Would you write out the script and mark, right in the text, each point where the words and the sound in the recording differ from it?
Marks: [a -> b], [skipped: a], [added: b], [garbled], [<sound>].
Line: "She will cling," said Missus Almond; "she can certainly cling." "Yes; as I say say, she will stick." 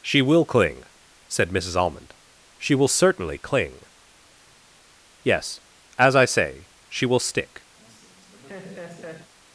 "She will cling," said Missus Almond; "she [can -> will] certainly cling." "Yes; as I say [skipped: say,] she will stick." [laugh]